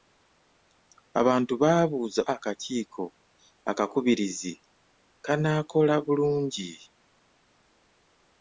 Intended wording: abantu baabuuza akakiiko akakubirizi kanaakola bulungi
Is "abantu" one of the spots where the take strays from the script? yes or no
no